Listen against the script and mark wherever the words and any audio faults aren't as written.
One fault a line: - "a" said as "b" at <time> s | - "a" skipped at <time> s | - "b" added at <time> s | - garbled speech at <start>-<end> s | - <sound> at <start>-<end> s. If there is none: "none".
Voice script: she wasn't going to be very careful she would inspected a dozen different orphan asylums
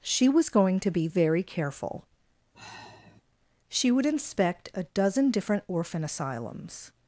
- "wasn't" said as "was" at 0.3 s
- sigh at 2.5-3.2 s
- "inspected" said as "inspect" at 4.0 s